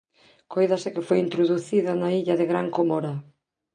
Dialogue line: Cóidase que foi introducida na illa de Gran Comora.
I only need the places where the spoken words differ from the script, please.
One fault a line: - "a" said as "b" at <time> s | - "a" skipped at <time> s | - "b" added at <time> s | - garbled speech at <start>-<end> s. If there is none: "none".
none